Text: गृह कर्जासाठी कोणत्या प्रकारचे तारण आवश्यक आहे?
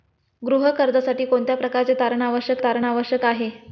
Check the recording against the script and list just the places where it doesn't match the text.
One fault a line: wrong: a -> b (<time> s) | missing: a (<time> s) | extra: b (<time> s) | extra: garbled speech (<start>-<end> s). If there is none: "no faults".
extra: तारण आवश्यक (2.6 s)